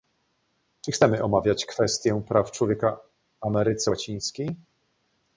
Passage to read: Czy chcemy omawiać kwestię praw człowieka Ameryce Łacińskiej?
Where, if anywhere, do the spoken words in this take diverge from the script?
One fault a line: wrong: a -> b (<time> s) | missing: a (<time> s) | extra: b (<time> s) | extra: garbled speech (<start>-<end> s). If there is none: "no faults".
no faults